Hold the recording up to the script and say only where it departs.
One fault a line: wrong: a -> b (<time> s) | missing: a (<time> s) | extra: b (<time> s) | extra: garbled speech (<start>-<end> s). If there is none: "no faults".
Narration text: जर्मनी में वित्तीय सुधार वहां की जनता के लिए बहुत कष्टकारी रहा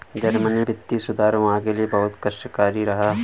missing: में (0.6 s)
missing: की जनता (1.6 s)